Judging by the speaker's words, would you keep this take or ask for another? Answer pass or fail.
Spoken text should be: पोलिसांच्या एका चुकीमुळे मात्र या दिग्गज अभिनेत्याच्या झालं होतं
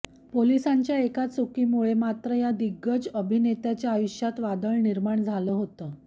fail